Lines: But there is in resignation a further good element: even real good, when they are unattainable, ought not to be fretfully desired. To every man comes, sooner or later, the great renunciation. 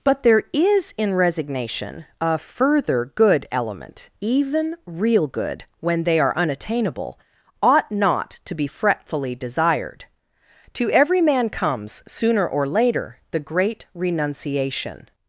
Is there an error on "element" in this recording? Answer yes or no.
no